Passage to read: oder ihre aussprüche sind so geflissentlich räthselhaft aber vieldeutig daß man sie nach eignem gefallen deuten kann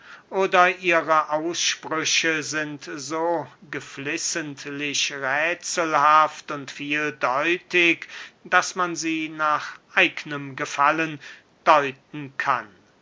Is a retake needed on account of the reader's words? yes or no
yes